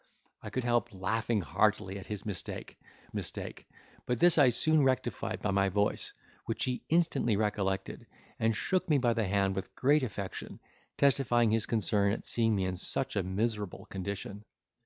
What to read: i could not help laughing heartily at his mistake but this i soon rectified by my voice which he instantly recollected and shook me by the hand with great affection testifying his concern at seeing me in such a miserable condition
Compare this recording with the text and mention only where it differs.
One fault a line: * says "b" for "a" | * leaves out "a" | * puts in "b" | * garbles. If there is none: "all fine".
* leaves out "not"
* puts in "mistake"